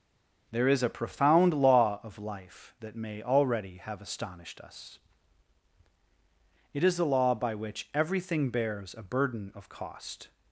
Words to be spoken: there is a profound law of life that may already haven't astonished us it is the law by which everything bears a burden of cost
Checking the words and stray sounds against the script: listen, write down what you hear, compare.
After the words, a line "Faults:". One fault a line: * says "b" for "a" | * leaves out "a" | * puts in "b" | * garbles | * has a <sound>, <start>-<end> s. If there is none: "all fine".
there is a profound law of life that may already have astonished us it is the law by which everything bears a burden of cost
Faults:
* says "have" for "haven't"